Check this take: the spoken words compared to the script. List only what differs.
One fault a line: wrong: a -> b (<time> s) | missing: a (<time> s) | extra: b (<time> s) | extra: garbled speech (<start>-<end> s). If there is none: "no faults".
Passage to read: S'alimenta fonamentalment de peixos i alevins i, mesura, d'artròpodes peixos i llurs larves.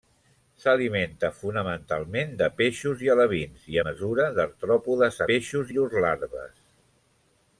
no faults